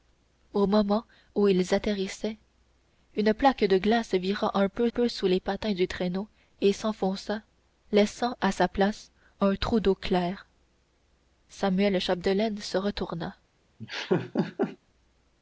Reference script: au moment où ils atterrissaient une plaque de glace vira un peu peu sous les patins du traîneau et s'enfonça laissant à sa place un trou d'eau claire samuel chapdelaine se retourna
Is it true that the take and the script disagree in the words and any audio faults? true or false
true